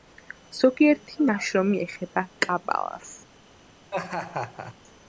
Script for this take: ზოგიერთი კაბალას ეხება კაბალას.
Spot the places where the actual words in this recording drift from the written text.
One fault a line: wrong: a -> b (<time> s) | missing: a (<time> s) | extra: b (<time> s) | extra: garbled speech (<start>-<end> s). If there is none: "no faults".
wrong: კაბალას -> ნაშრომი (1.3 s)